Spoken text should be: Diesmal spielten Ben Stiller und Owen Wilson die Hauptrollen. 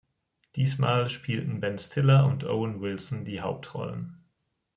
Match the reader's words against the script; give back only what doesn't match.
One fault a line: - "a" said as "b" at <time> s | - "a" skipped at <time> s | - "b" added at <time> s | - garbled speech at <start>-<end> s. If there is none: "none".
none